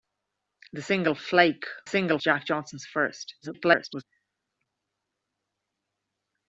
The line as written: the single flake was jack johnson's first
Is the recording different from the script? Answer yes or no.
yes